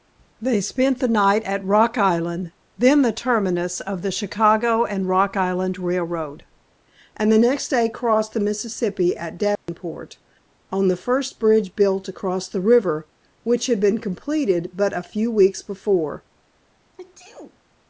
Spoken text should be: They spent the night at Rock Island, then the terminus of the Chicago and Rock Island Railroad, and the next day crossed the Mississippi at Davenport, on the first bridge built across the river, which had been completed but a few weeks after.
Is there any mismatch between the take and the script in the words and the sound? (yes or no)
yes